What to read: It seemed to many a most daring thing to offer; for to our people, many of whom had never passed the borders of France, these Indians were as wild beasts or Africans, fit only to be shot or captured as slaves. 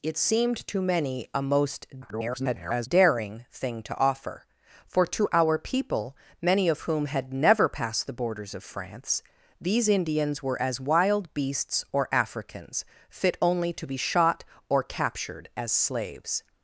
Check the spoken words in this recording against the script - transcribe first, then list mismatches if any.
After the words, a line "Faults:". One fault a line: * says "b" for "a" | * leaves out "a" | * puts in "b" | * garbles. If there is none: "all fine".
It seemed to many a most [garbled] daring thing to offer; for to our people, many of whom had never passed the borders of France, these Indians were as wild beasts or Africans, fit only to be shot or captured as slaves.
Faults:
* garbles